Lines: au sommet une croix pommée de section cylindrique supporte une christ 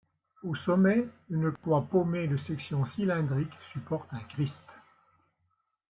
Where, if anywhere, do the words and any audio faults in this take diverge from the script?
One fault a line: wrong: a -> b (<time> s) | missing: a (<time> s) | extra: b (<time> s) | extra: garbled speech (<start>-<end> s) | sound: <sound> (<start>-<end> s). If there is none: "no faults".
sound: dropout (1.6-1.6 s)
wrong: une -> un (4.1 s)